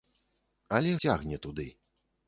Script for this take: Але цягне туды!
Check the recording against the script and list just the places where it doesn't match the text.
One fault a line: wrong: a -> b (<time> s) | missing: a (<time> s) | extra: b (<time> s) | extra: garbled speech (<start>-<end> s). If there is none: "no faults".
no faults